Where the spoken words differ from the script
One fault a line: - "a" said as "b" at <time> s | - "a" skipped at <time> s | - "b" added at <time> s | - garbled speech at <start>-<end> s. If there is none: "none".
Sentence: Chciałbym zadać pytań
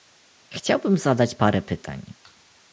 - "parę" added at 1.3 s